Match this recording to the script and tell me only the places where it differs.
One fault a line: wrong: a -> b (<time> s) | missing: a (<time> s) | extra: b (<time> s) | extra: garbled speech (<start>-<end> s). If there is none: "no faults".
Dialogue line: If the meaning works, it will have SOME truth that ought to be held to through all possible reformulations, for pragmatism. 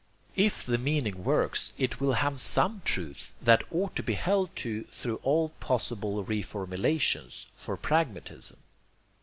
no faults